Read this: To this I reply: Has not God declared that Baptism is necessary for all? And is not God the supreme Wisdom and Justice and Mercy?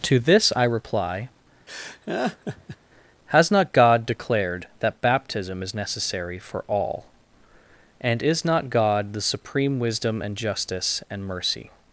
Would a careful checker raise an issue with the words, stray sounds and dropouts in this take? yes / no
yes